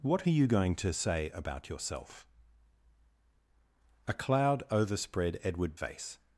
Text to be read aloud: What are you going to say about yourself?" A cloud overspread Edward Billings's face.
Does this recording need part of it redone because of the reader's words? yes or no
yes